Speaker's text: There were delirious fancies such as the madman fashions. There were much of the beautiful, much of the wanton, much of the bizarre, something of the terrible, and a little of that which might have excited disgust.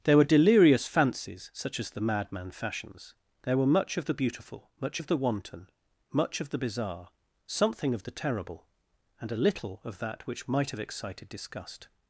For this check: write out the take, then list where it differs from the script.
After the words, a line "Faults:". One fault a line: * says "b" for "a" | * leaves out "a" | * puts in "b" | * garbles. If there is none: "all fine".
There were delirious fancies such as the madman fashions. There were much of the beautiful, much of the wanton, much of the bizarre, something of the terrible, and a little of that which might have excited disgust.
Faults:
all fine